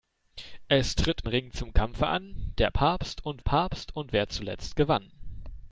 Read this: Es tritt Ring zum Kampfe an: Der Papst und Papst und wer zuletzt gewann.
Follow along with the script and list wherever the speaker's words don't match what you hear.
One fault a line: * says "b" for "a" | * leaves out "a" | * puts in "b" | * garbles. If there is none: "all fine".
all fine